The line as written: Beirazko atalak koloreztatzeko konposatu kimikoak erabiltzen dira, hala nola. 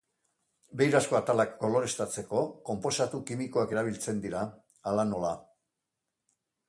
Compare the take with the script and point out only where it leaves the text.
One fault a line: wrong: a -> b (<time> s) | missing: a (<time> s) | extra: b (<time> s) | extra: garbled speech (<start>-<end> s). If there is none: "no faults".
no faults